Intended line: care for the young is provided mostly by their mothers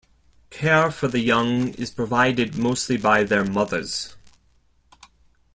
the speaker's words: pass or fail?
pass